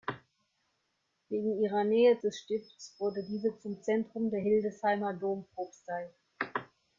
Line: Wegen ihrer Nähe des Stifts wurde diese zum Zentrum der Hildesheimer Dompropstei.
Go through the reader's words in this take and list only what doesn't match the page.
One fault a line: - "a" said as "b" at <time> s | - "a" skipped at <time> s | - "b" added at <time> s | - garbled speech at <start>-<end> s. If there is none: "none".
none